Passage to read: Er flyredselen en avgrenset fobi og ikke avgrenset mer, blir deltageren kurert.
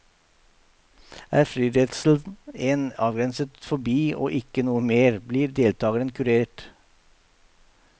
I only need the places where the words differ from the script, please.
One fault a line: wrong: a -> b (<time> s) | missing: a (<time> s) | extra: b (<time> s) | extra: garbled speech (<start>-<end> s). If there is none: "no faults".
wrong: avgrenset -> noe (4.7 s)